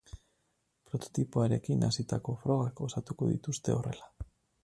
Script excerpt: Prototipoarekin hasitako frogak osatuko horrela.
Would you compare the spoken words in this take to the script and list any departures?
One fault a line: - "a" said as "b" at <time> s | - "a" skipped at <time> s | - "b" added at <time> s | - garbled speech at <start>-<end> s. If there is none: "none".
- "dituzte" added at 3.4 s